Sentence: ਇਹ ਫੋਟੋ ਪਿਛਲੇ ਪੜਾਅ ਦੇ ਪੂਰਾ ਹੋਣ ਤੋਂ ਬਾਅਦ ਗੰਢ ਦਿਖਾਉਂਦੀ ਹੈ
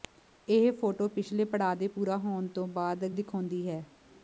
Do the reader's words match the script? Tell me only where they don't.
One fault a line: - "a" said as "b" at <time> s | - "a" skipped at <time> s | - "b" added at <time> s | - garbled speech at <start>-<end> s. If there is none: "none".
- "ਗੰਢ" skipped at 3.0 s